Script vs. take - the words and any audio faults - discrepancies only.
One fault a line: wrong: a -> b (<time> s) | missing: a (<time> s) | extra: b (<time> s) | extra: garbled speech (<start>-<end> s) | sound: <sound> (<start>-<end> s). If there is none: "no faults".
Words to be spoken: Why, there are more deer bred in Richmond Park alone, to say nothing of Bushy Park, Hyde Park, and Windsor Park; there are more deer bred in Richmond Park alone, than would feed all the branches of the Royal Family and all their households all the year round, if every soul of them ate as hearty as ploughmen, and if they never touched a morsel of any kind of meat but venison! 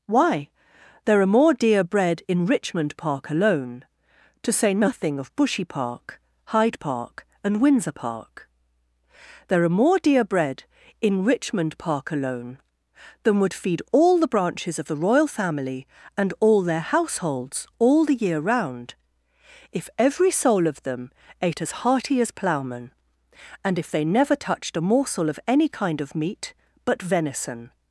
no faults